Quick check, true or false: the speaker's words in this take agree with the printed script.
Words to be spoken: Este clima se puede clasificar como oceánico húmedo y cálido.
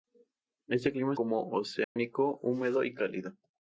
false